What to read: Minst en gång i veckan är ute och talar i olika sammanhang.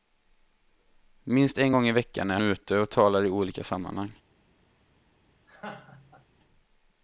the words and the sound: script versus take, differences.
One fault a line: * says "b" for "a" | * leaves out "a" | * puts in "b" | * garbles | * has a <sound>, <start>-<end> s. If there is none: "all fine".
* has a laugh, 5.5-6.3 s